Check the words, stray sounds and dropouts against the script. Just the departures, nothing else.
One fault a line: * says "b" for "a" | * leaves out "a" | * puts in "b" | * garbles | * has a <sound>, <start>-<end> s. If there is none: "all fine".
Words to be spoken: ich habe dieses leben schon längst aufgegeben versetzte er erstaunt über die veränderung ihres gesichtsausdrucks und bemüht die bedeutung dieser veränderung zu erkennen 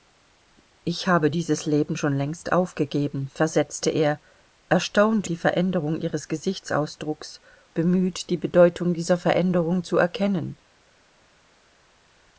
* leaves out "über"
* leaves out "und"